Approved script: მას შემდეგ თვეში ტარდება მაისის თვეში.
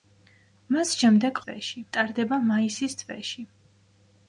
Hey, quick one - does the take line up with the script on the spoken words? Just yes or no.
yes